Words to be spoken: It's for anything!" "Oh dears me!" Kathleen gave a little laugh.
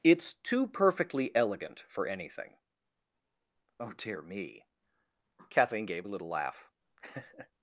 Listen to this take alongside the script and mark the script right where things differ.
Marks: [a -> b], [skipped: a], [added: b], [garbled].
It's [added: too perfectly elegant] for anything!" "Oh [dears -> dear] me!" Kathleen gave a little laugh.